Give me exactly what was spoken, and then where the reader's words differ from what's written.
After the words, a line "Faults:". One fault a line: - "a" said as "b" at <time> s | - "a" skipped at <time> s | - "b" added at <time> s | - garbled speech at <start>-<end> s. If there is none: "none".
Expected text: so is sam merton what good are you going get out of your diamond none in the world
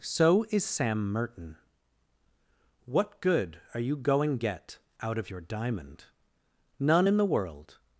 so is sam merton what good are you going get out of your diamond none in the world
Faults:
none